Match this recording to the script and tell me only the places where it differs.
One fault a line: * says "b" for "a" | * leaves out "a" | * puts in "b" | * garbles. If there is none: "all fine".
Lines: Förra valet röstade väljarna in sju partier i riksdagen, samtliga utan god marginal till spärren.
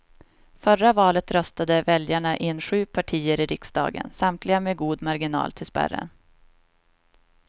* says "med" for "utan"